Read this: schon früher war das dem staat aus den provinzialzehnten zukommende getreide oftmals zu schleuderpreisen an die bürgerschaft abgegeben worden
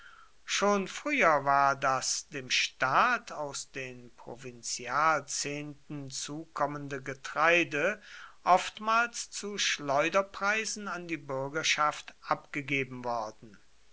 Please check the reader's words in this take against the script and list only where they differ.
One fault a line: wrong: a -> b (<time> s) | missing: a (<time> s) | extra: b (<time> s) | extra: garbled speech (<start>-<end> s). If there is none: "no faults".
no faults